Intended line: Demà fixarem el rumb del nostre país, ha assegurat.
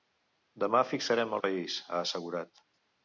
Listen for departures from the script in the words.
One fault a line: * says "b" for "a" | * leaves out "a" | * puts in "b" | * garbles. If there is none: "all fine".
* leaves out "rumb del nostre"